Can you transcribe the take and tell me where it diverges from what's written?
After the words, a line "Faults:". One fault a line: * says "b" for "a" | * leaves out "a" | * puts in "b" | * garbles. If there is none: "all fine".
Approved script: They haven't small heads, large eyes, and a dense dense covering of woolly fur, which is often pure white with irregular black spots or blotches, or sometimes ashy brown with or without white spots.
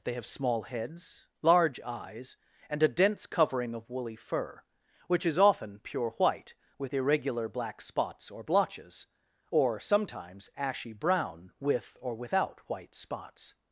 They have small heads, large eyes, and a dense covering of woolly fur, which is often pure white with irregular black spots or blotches, or sometimes ashy brown with or without white spots.
Faults:
* says "have" for "haven't"
* leaves out "dense"